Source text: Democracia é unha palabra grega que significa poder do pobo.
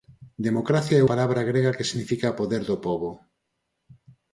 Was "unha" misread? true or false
true